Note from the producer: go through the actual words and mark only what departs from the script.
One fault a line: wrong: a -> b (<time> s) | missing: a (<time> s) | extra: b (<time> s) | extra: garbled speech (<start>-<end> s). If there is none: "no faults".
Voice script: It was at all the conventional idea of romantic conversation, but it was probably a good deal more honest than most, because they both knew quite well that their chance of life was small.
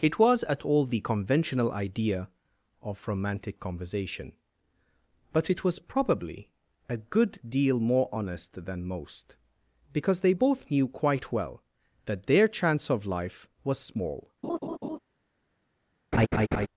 no faults